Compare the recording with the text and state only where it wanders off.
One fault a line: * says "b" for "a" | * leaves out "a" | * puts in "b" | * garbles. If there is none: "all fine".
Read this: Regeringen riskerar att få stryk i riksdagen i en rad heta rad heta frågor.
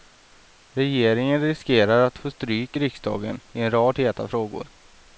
* leaves out "rad heta"